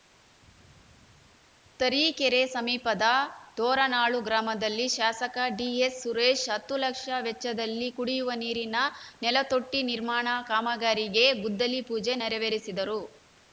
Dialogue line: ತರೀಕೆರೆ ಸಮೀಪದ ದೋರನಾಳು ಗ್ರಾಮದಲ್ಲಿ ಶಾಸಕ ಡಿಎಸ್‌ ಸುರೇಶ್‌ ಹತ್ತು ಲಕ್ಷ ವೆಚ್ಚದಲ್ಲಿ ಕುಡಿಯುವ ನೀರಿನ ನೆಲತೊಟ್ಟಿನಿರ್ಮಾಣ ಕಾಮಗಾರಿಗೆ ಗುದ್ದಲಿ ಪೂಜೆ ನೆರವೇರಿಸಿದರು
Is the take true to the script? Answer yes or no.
yes